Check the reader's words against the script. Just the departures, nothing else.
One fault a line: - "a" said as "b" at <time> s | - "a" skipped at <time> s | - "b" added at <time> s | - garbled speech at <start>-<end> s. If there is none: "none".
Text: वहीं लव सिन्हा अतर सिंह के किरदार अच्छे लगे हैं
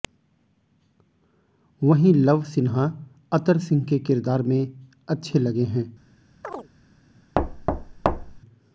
- "में" added at 4.4 s